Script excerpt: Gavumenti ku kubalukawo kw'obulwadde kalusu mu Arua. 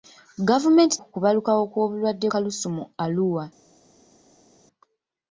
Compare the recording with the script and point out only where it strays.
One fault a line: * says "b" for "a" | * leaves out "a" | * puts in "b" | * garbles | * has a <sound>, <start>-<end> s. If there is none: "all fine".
all fine